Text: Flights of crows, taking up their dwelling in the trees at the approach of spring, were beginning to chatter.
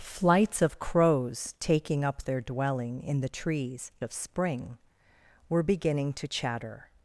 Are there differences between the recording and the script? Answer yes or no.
yes